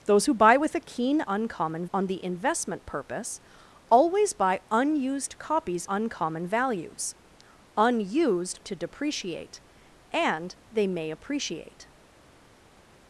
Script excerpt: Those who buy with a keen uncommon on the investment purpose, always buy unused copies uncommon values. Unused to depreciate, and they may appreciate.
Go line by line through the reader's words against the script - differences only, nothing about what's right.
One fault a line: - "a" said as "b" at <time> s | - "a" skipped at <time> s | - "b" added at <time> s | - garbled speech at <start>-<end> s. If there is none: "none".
none